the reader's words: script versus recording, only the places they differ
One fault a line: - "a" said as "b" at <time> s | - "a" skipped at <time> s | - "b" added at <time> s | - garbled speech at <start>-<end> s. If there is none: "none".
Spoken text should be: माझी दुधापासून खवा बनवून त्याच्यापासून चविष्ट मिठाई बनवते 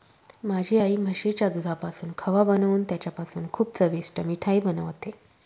- "आई म्हशीच्या" added at 0.7 s
- "खूप" added at 3.5 s